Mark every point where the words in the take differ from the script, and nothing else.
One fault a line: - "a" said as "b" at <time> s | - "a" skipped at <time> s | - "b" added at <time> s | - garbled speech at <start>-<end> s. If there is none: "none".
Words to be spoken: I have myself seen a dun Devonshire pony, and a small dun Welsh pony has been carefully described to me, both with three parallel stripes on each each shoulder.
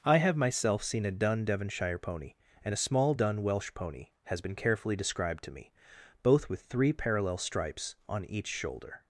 - "each" skipped at 8.5 s